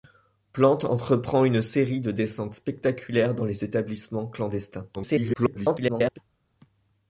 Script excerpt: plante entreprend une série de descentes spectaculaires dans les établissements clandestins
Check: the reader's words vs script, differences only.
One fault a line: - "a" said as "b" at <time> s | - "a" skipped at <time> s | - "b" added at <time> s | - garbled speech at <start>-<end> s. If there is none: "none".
- garbled speech at 4.9-6.2 s